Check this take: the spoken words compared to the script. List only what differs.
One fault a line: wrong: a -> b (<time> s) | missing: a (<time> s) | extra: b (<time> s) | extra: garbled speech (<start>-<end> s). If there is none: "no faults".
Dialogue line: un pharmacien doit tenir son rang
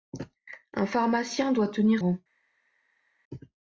missing: son (2.0 s)